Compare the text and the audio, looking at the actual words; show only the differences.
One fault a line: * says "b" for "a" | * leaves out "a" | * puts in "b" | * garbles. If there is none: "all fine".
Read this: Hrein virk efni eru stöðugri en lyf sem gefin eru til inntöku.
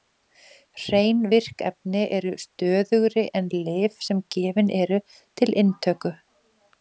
all fine